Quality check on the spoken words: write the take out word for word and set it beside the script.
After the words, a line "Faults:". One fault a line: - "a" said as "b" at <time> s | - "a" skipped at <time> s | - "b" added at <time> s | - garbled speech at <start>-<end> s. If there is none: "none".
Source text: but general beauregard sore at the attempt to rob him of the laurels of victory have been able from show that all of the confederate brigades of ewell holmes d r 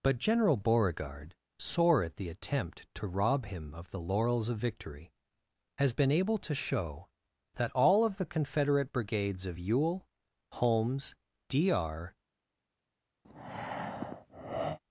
but general beauregard sore at the attempt to rob him of the laurels of victory has been able to show that all of the confederate brigades of ewell holmes d r
Faults:
- "have" said as "has" at 5.8 s
- "from" said as "to" at 6.4 s